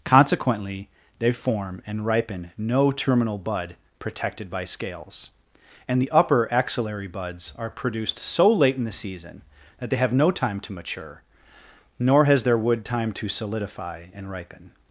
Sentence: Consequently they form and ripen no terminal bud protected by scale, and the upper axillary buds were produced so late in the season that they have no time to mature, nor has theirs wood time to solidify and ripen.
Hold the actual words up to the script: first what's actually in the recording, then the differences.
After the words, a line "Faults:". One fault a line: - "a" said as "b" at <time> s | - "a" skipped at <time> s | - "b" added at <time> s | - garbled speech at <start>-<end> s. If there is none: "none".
Consequently they form and ripen no terminal bud protected by scales, and the upper axillary buds are produced so late in the season that they have no time to mature, nor has their wood time to solidify and ripen.
Faults:
- "scale" said as "scales" at 4.6 s
- "were" said as "are" at 7.6 s
- "theirs" said as "their" at 12.4 s